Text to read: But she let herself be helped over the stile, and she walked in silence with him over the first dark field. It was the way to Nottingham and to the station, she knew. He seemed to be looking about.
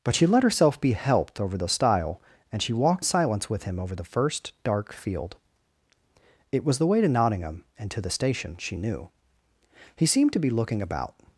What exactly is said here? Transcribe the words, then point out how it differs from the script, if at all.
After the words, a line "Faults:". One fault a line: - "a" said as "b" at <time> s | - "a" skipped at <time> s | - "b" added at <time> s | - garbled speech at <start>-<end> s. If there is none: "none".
But she let herself be helped over the stile, and she walked silence with him over the first dark field. It was the way to Nottingham and to the station, she knew. He seemed to be looking about.
Faults:
- "in" skipped at 3.0 s